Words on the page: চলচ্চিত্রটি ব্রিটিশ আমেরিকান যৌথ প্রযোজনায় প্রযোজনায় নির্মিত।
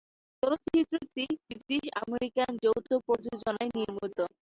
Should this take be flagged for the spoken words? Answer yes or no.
yes